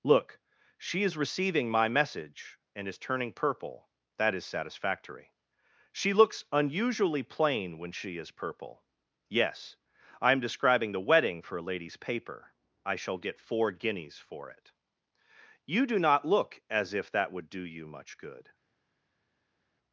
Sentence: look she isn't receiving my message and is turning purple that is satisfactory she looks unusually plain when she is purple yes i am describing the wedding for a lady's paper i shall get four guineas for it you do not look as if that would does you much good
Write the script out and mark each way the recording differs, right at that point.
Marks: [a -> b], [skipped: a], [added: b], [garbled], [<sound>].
look she [isn't -> is] receiving my message and is turning purple that is satisfactory she looks unusually plain when she is purple yes i am describing the wedding for a lady's paper i shall get four guineas for it you do not look as if that would [does -> do] you much good